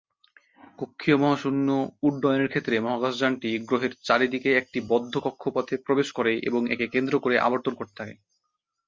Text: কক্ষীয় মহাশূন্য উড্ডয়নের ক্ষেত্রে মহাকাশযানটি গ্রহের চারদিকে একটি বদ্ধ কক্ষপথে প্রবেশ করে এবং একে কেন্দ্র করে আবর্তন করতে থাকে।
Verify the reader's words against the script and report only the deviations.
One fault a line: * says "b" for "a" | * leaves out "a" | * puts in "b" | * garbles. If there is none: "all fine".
all fine